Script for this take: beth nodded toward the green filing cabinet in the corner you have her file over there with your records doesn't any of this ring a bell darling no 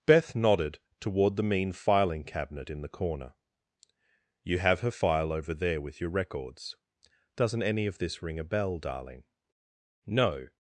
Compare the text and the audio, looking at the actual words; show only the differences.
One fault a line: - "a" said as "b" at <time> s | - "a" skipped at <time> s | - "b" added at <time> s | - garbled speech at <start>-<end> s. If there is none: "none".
- "green" said as "mean" at 1.4 s